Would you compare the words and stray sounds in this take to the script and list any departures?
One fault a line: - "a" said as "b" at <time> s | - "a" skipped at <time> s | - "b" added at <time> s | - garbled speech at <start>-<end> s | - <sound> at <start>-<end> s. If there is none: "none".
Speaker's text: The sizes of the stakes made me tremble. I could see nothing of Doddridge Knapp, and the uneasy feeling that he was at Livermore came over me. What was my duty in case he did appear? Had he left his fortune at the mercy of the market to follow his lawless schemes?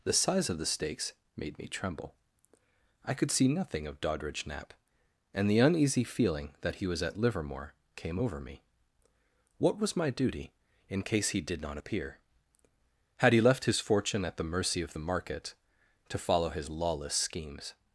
- "sizes" said as "size" at 0.1 s
- "not" added at 11.6 s